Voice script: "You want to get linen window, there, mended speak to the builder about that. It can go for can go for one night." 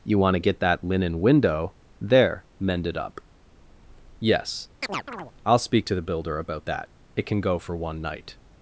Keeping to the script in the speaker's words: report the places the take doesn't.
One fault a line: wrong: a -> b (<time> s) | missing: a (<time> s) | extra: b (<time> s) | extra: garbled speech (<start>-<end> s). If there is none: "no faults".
extra: that (0.6 s)
extra: up Yes I'll (3.0 s)
missing: can go for (7.7 s)